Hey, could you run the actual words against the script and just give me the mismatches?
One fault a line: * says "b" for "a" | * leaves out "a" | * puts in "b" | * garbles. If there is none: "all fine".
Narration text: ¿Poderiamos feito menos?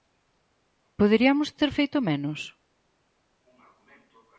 * puts in "ter"